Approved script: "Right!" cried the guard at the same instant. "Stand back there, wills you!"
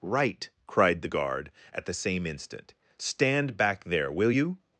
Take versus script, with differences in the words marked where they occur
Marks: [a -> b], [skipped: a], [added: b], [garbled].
"Right!" cried the guard at the same instant. "Stand back there, [wills -> will] you!"